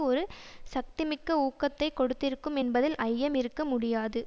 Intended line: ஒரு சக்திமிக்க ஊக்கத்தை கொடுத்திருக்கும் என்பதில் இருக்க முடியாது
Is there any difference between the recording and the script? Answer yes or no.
yes